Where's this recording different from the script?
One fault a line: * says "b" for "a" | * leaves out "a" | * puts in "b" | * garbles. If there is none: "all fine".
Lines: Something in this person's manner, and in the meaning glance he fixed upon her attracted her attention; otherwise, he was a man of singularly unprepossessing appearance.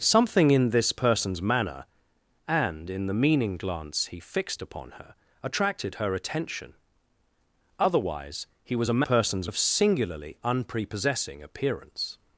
* says "person's" for "man"